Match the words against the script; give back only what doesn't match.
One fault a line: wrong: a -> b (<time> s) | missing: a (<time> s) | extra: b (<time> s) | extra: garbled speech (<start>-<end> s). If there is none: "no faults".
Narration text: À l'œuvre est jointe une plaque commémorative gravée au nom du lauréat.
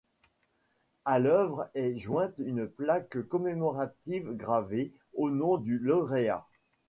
no faults